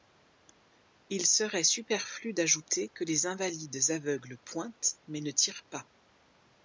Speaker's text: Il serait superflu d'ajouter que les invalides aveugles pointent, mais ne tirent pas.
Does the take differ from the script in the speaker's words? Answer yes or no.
no